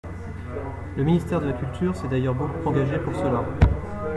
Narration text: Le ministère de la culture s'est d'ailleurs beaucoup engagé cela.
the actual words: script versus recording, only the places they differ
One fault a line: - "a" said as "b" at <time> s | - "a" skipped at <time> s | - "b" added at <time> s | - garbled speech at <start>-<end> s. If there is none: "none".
- "pour" added at 3.0 s